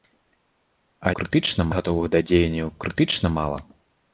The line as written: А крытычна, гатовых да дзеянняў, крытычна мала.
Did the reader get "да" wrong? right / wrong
right